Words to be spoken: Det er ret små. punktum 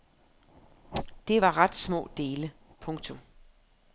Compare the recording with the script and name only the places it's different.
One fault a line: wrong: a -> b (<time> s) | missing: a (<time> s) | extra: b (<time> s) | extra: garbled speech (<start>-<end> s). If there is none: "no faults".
wrong: er -> var (1.4 s)
extra: dele (2.2 s)